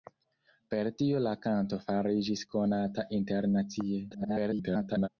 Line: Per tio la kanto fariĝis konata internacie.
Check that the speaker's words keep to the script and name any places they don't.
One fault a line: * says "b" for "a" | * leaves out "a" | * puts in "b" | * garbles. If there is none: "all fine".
* garbles